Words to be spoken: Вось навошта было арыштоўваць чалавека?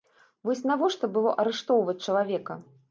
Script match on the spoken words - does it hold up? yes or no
yes